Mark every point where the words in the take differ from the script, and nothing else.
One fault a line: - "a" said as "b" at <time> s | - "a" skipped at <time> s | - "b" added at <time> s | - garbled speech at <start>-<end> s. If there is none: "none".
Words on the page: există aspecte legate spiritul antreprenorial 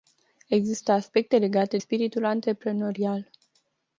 none